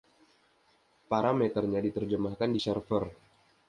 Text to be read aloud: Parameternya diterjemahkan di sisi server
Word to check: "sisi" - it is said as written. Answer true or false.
false